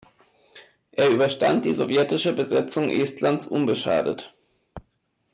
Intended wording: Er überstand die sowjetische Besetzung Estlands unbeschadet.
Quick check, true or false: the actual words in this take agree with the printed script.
true